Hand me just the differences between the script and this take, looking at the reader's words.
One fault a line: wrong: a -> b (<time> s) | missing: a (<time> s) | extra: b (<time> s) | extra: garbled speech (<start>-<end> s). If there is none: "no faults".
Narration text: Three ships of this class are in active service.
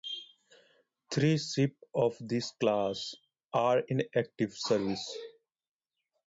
no faults